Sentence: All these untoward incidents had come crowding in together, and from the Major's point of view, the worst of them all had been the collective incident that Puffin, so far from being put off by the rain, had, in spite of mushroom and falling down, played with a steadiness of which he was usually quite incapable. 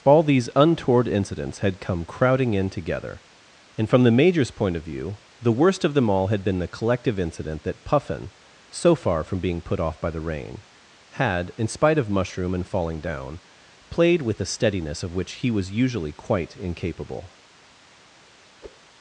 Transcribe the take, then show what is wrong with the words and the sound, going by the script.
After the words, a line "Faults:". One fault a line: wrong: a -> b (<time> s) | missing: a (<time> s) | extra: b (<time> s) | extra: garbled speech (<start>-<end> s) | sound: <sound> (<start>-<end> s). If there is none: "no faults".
All these untoward incidents had come crowding in together, and from the Major's point of view, the worst of them all had been the collective incident that Puffin, so far from being put off by the rain, had, in spite of mushroom and falling down, played with a steadiness of which he was usually quite incapable.
Faults:
sound: whoosh (18.6-18.8 s)